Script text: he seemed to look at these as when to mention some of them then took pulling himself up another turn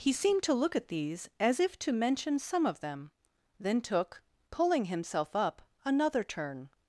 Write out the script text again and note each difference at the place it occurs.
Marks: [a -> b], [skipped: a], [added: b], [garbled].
he seemed to look at these as [when -> if] to mention some of them then took pulling himself up another turn